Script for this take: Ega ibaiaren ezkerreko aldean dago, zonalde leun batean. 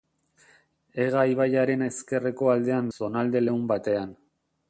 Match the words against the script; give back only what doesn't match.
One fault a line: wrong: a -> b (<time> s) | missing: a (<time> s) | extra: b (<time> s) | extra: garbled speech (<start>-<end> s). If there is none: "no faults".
missing: dago (2.9 s)